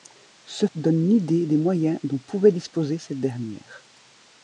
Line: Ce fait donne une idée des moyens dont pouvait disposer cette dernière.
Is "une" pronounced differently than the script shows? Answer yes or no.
no